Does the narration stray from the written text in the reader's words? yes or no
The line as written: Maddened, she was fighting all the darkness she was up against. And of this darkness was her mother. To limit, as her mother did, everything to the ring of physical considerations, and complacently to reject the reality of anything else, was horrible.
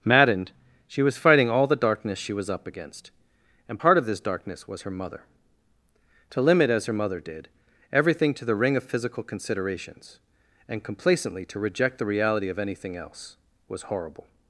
yes